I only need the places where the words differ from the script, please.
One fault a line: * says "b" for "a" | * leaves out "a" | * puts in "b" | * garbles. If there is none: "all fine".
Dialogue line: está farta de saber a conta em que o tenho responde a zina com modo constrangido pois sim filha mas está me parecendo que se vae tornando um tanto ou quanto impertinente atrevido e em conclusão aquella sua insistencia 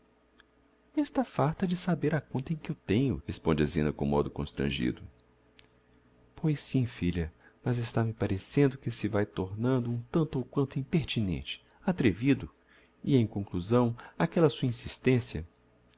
all fine